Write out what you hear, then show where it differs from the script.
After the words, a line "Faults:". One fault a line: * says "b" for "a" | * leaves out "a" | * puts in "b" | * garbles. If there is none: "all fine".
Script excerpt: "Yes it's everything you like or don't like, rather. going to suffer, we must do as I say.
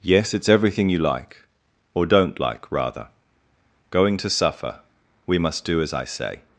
"Yes it's everything you like or don't like, rather. going to suffer, we must do as I say.
Faults:
all fine